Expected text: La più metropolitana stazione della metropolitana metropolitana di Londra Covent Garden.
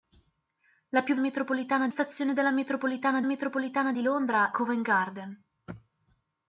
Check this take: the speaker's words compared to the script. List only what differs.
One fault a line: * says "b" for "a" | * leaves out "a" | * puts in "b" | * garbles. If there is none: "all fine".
all fine